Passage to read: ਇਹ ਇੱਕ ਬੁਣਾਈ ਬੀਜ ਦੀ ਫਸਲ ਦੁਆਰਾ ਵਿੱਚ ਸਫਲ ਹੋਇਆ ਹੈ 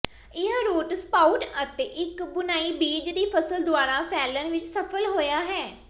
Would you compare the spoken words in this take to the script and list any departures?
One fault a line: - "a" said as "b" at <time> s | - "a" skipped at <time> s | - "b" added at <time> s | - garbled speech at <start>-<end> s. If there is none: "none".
- "ਰੂਟ ਸਪਾਉਟ ਅਤੇ" added at 0.7 s
- "ਫੈਲਣ" added at 4.1 s